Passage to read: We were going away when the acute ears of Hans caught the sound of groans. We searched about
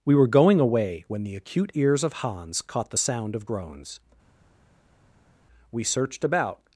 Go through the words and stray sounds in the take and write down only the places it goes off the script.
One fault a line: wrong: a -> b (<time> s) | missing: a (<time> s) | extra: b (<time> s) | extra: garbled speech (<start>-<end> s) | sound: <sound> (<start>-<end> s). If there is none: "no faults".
no faults